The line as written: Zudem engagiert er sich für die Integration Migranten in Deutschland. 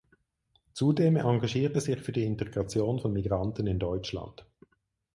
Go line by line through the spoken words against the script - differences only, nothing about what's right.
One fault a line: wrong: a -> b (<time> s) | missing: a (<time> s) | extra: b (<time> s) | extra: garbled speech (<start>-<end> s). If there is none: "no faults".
extra: von (3.0 s)